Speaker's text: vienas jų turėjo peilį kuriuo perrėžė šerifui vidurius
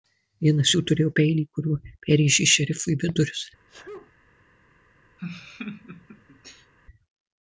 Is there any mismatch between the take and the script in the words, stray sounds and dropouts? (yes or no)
yes